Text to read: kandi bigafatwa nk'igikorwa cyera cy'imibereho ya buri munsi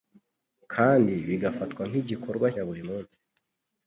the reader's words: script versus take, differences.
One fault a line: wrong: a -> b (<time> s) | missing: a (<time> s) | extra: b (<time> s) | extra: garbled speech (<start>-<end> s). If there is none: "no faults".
missing: cyera cy'imibereho (2.5 s)